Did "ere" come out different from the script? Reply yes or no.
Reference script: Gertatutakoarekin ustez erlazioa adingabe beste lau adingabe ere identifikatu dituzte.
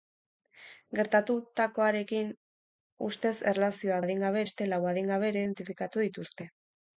no